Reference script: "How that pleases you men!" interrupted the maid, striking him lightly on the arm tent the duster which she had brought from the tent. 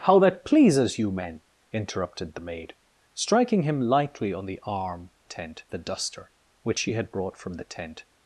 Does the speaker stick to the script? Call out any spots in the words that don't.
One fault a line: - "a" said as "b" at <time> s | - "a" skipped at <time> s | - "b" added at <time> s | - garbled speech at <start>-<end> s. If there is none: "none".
none